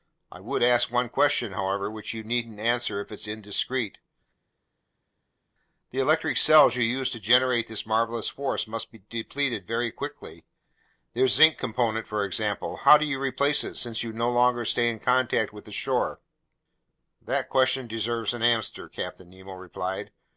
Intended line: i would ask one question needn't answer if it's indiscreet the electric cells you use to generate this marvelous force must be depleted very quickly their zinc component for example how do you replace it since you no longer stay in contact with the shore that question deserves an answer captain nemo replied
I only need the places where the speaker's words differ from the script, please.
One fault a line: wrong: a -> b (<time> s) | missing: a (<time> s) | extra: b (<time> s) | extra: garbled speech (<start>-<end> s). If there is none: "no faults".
extra: however which you (1.5 s)